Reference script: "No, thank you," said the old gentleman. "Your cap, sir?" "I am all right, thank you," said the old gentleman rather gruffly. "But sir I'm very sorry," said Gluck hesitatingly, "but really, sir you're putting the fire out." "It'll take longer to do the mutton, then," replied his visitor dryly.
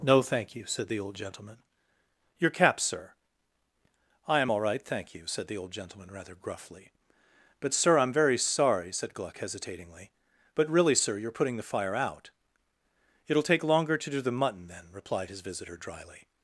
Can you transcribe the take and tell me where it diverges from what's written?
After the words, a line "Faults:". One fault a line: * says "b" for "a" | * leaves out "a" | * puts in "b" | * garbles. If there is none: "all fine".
"No, thank you," said the old gentleman. "Your cap, sir?" "I am all right, thank you," said the old gentleman rather gruffly. "But sir I'm very sorry," said Gluck hesitatingly, "but really, sir you're putting the fire out." "It'll take longer to do the mutton, then," replied his visitor dryly.
Faults:
all fine